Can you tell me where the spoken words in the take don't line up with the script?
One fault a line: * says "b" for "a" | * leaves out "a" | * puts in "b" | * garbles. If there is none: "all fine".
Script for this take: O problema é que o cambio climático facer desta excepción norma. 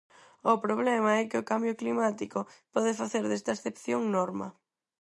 * puts in "pode"